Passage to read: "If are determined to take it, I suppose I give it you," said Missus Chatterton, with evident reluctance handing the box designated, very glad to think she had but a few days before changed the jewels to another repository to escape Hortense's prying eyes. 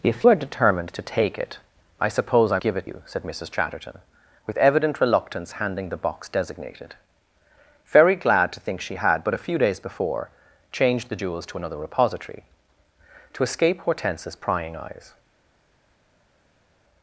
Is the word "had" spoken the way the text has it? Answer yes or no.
yes